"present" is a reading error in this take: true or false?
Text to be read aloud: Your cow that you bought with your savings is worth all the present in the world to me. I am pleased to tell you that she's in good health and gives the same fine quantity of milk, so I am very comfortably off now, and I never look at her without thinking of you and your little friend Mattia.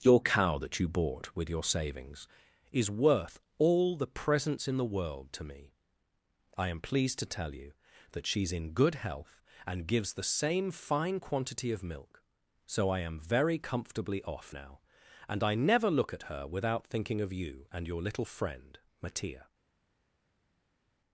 true